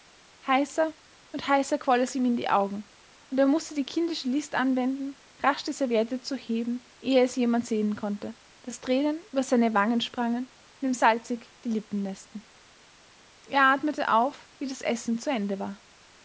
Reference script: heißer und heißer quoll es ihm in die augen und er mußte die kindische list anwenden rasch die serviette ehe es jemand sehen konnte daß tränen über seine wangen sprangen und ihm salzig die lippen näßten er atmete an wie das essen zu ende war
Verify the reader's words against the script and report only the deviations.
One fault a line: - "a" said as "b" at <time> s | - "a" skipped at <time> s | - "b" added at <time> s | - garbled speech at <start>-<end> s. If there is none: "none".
- "zu heben" added at 6.2 s
- "an" said as "auf" at 14.1 s